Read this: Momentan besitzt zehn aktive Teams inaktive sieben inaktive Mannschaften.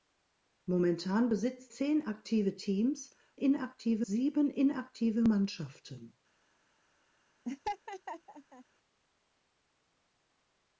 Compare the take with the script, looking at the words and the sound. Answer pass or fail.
fail